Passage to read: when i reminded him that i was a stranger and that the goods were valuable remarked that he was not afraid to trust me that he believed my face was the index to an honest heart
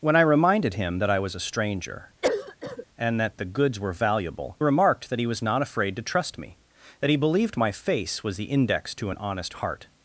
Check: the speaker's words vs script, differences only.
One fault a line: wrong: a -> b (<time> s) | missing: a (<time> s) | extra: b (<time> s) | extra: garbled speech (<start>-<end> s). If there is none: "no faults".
no faults